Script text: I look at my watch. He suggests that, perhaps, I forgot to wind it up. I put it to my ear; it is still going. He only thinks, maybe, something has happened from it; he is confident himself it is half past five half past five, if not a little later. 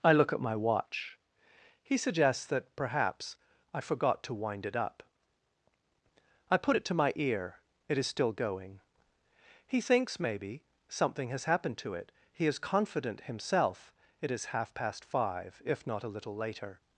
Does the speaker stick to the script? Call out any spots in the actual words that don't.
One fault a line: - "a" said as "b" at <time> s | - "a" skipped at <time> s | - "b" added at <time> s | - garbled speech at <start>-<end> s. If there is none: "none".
- "only" skipped at 9.8 s
- "from" said as "to" at 11.8 s
- "half past five" skipped at 15.6 s